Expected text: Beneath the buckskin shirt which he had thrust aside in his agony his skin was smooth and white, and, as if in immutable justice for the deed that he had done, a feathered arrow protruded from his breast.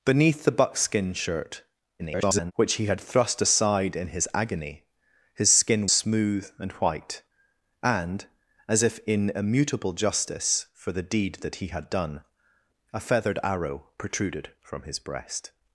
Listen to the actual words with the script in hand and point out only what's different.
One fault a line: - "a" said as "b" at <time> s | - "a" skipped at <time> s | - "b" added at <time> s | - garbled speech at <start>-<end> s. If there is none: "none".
- garbled speech at 2.0-2.5 s
- "was" skipped at 5.9 s